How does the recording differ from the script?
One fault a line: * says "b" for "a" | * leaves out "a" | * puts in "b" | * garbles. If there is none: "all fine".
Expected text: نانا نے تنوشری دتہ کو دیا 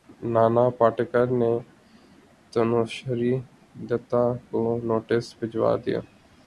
* puts in "پاٹیکر"
* puts in "نوٹس بھجوا"